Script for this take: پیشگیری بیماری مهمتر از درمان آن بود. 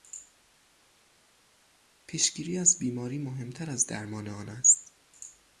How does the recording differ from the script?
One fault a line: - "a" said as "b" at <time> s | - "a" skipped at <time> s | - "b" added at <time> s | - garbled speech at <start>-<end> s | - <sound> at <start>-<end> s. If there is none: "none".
- "از" added at 2.6 s
- "بود" said as "است" at 4.5 s